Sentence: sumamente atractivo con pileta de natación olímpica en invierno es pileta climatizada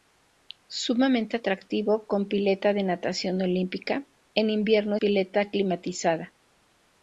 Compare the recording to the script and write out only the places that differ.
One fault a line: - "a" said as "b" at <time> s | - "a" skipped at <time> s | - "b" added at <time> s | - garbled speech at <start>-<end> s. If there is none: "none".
- "es" skipped at 5.0 s